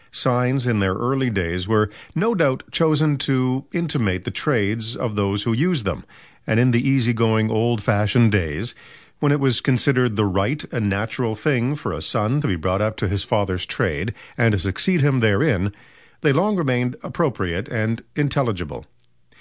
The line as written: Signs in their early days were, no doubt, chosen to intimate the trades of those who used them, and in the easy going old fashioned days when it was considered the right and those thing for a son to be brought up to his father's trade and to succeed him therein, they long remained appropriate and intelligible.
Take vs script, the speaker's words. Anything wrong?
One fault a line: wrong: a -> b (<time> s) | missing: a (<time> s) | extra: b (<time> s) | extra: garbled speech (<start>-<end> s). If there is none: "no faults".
wrong: those -> natural (10.9 s)